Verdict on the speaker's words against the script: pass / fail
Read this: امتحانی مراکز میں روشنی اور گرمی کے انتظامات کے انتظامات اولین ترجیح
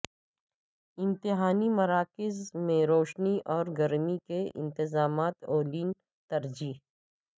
fail